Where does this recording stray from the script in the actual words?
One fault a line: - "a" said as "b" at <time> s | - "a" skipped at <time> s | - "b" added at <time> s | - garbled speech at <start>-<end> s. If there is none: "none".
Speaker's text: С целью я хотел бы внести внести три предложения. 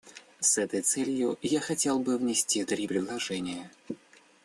- "этой" added at 0.6 s
- "внести" skipped at 2.6 s